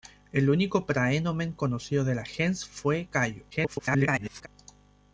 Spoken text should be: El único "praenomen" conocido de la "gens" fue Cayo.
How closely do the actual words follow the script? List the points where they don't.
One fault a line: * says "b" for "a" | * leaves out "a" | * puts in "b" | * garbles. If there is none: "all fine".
* garbles